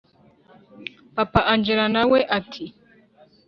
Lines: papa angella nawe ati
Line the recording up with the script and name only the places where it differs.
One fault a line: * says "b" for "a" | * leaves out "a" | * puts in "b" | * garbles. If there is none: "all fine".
all fine